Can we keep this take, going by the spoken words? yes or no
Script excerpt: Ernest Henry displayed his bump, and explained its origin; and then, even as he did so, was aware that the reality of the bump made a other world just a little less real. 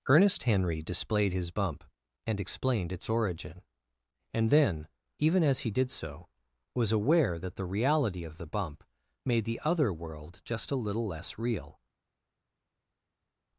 no